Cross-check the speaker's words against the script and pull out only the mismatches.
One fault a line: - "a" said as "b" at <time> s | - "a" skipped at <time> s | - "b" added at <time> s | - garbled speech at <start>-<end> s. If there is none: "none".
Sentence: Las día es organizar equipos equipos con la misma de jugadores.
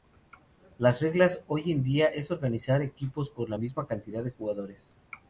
- "reglas hoy en" added at 1.0 s
- "equipos" skipped at 3.3 s
- "cantidad" added at 3.8 s